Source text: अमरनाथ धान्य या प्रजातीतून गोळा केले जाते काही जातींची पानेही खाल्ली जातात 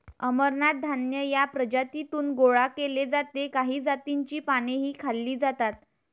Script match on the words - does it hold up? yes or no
yes